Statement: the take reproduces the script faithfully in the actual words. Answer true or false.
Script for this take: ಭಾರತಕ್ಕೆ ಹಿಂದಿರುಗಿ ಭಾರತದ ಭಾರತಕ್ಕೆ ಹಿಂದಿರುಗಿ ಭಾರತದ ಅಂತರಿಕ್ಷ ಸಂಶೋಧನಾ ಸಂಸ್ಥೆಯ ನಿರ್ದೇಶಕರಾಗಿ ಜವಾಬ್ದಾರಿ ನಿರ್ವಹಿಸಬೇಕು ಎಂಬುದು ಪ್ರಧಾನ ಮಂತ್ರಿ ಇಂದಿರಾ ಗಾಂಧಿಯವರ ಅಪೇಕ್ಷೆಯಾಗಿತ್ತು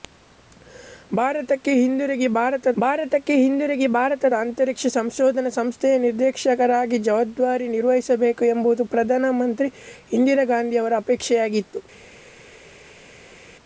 true